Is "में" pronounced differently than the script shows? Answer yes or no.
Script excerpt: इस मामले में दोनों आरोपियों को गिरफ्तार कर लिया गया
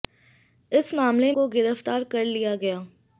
yes